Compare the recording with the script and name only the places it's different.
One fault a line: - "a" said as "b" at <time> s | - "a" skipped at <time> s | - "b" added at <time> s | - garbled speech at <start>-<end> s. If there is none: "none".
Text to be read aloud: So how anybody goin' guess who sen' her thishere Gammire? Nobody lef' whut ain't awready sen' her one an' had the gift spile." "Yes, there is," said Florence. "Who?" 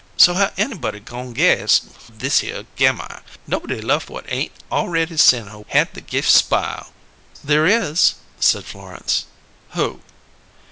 - "who sen her" skipped at 1.8 s
- "one an" skipped at 5.6 s
- "Yes" skipped at 6.9 s